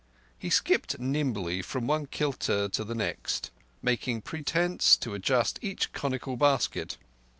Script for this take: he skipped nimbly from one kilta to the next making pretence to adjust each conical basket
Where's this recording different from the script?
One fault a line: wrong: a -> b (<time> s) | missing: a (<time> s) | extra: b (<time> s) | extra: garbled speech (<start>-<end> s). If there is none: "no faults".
no faults